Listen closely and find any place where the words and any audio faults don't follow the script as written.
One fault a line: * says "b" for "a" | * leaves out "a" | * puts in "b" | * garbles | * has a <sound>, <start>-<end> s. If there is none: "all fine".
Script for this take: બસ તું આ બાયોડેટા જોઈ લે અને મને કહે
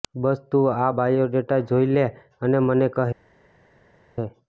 all fine